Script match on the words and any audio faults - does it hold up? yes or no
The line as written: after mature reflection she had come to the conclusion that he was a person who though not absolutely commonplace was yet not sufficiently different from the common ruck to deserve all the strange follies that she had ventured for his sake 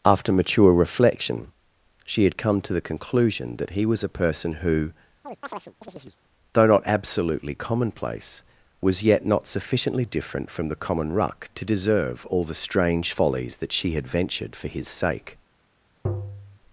no